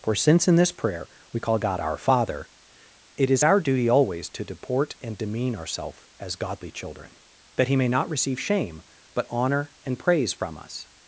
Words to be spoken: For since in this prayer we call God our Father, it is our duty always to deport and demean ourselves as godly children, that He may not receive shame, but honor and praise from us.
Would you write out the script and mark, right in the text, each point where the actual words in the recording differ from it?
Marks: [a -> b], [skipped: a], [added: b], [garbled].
For since in this prayer we call God our Father, it is our duty always to deport and demean ourselves as godly children, that He may not receive shame, but honor and praise from us.